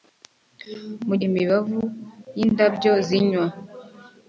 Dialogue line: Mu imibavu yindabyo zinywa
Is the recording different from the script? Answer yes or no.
no